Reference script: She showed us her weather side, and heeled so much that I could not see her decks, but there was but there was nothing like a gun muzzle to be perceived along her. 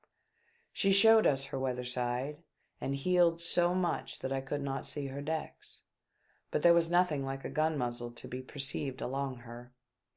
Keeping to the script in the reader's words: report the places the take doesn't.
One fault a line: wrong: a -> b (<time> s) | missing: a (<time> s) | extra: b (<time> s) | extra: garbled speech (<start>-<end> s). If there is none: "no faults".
missing: but there was (6.9 s)